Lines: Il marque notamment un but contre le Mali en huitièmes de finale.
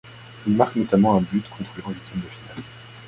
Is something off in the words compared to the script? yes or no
yes